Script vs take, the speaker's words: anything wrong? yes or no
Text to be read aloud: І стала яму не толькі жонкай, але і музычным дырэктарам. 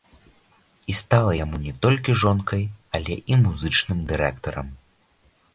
no